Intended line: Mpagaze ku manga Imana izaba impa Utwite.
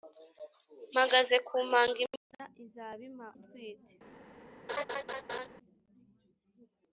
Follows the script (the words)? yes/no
yes